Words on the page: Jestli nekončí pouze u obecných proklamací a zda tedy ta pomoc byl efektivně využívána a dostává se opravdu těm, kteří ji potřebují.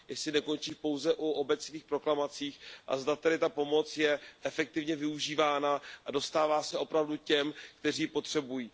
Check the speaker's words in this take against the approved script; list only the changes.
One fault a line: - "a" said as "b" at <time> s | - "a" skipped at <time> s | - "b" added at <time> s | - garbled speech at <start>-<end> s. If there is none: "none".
- "byl" said as "je" at 4.0 s